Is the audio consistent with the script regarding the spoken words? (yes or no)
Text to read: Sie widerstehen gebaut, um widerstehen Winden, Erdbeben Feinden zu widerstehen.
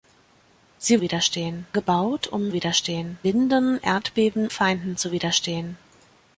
yes